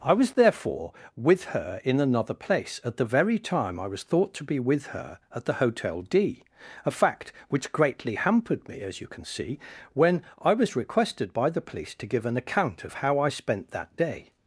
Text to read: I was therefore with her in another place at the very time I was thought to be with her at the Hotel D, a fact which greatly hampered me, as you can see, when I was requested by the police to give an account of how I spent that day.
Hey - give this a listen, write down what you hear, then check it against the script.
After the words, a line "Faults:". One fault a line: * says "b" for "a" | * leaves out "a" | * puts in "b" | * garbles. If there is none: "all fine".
I was therefore with her in another place at the very time I was thought to be with her at the Hotel D, a fact which greatly hampered me, as you can see, when I was requested by the police to give an account of how I spent that day.
Faults:
all fine